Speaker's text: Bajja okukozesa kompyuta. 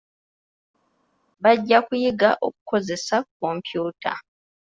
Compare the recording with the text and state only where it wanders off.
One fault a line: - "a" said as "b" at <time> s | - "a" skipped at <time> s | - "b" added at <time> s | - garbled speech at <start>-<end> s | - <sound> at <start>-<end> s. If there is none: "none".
- "kuyiga" added at 1.9 s